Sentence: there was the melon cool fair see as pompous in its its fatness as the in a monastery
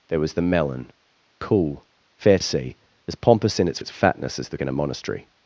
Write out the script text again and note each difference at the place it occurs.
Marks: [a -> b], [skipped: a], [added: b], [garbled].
there was the melon cool fair see as pompous in its its fatness as the in a monastery